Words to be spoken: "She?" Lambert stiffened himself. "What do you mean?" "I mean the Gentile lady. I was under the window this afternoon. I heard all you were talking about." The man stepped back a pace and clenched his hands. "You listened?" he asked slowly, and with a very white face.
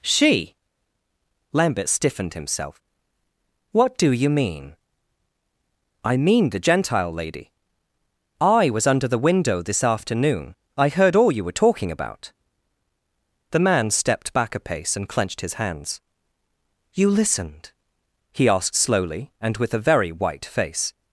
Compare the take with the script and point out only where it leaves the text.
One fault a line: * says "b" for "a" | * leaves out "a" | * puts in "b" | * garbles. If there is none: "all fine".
all fine